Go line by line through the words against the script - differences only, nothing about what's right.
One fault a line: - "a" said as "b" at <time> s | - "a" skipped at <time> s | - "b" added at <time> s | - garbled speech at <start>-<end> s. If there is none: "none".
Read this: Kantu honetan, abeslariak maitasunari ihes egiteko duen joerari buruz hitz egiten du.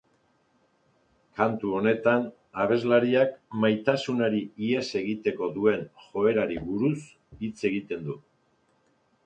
none